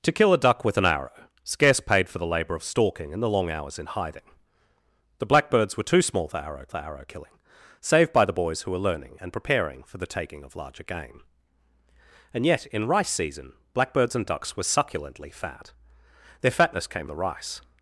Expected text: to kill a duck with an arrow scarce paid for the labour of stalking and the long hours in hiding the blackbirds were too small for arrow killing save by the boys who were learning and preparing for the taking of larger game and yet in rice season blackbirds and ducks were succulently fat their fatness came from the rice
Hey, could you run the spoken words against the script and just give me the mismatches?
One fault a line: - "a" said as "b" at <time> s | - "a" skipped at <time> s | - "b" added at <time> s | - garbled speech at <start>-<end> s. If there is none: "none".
- "for arrow" added at 6.7 s
- "from" skipped at 17.1 s